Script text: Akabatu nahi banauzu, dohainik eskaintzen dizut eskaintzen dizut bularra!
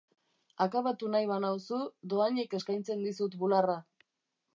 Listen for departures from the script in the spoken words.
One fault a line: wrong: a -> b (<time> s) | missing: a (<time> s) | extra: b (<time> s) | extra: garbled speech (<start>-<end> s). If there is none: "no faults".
missing: eskaintzen dizut (3.4 s)